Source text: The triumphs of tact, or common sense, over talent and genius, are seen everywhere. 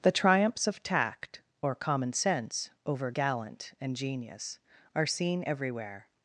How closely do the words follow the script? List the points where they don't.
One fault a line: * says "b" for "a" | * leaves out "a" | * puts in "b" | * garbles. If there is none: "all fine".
* says "gallant" for "talent"